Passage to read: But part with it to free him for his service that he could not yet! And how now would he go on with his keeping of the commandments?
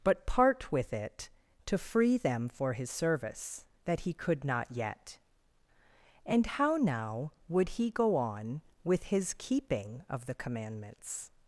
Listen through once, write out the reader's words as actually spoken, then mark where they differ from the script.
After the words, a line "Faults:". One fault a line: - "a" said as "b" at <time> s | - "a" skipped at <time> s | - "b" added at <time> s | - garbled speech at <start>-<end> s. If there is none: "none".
But part with it to free them for his service that he could not yet! And how now would he go on with his keeping of the commandments?
Faults:
- "him" said as "them" at 2.2 s